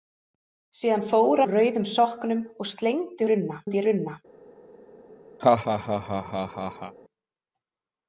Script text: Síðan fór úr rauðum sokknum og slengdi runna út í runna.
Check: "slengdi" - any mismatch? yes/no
no